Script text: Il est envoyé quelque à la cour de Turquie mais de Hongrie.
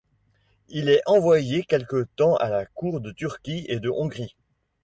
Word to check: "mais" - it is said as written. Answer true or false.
false